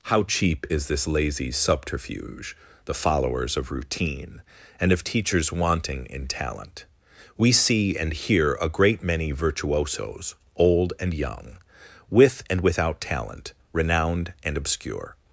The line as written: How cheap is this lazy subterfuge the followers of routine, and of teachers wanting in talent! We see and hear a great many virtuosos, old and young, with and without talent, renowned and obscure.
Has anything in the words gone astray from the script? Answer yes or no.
no